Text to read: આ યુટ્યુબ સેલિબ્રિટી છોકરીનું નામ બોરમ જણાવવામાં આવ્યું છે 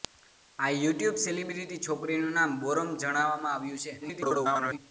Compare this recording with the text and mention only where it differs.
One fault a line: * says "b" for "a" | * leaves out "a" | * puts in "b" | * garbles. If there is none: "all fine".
* garbles